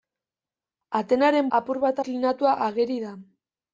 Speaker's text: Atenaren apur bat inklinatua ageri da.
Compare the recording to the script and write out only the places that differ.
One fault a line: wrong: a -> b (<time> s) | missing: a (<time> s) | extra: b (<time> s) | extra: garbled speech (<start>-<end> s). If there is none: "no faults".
no faults